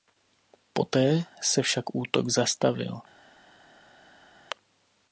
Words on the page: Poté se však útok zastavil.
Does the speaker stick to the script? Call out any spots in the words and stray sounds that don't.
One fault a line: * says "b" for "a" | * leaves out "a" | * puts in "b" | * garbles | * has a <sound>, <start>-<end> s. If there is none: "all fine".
all fine